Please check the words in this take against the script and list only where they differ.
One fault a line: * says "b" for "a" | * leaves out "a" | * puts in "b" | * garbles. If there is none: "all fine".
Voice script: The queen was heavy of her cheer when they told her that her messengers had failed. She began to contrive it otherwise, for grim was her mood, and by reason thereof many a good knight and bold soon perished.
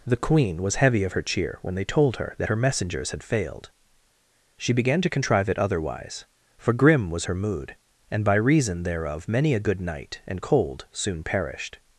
* says "cold" for "bold"